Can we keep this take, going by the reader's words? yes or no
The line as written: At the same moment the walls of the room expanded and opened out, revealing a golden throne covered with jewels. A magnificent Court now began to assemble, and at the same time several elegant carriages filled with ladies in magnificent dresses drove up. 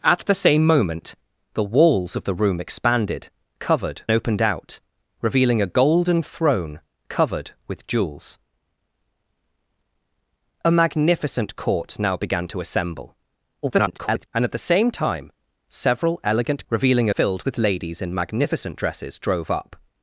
no